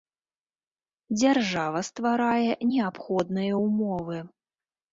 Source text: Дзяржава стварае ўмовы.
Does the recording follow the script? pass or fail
fail